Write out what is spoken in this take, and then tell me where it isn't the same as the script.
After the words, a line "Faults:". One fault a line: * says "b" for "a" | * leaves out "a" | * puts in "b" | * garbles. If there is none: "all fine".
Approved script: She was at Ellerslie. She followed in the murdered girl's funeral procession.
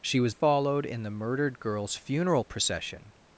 She was followed in the murdered girl's funeral procession.
Faults:
* leaves out "at Ellerslie She"